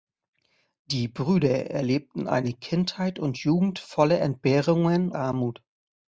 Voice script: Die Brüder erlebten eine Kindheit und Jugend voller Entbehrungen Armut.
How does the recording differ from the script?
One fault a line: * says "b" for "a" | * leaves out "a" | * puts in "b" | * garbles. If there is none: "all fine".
all fine